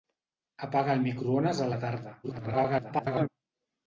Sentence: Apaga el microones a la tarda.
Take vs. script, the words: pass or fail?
fail